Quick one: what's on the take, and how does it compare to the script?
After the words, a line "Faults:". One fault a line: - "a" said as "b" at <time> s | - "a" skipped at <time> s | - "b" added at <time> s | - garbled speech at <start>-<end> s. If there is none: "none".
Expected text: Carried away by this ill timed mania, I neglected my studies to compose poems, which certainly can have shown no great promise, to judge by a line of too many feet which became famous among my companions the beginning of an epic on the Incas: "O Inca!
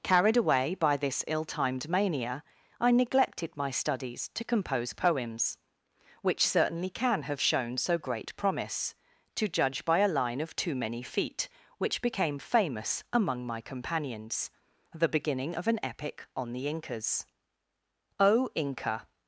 Carried away by this ill timed mania, I neglected my studies to compose poems, which certainly can have shown so great promise, to judge by a line of too many feet which became famous among my companions the beginning of an epic on the Incas: "O Inca!
Faults:
- "no" said as "so" at 7.8 s